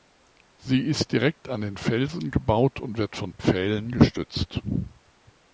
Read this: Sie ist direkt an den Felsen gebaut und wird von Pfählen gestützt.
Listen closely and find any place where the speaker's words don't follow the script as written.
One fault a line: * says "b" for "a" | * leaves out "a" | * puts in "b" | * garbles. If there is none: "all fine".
all fine